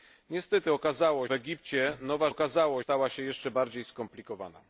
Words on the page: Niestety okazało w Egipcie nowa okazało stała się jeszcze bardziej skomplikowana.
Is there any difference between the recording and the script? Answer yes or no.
no